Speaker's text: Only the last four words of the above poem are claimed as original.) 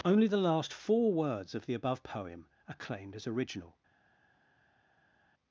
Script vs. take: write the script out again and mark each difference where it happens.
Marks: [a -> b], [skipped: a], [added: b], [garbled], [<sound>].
Only the last four words of the above poem are claimed as original.)